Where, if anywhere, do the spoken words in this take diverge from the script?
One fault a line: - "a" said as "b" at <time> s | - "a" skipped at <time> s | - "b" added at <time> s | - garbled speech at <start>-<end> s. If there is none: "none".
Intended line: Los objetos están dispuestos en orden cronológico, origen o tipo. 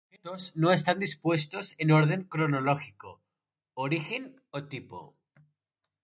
- "no" added at 0.6 s